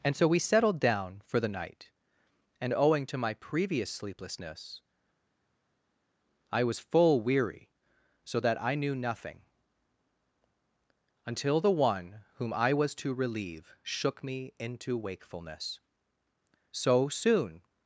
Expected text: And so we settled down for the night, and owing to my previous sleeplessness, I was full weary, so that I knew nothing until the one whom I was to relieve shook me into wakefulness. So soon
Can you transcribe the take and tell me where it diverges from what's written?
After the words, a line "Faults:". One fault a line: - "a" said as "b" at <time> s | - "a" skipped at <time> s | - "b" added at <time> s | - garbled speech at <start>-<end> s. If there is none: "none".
And so we settled down for the night, and owing to my previous sleeplessness, I was full weary, so that I knew nothing until the one whom I was to relieve shook me into wakefulness. So soon
Faults:
none